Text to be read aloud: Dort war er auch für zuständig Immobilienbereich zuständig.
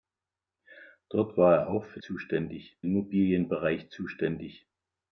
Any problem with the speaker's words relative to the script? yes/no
no